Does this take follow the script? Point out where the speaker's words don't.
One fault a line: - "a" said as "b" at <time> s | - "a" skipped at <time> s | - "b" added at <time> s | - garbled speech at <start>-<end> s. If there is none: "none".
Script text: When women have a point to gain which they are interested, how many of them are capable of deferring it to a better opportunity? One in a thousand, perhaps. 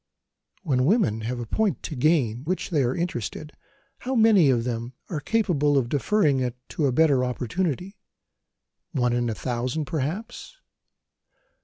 none